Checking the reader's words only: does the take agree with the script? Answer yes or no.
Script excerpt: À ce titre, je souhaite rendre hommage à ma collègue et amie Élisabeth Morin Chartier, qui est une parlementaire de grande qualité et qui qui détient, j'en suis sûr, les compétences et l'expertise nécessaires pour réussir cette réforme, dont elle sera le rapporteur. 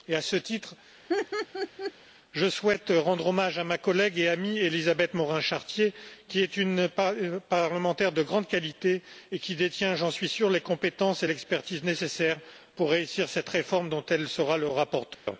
no